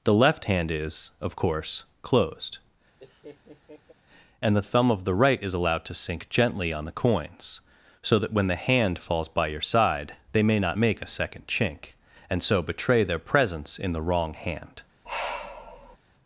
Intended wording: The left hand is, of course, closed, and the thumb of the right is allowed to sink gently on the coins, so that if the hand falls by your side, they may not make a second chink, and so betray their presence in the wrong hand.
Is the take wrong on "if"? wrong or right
wrong